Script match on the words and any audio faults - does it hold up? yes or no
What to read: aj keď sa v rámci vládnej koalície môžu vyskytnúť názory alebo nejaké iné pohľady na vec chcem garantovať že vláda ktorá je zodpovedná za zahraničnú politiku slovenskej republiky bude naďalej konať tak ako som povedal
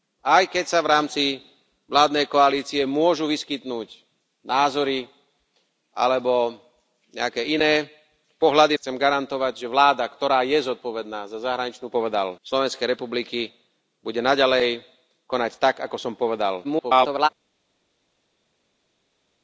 no